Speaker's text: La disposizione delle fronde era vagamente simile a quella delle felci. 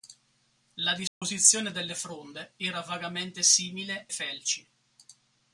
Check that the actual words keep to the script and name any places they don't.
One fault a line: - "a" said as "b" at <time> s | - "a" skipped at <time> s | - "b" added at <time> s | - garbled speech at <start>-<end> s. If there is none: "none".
- "a quella delle" skipped at 4.1 s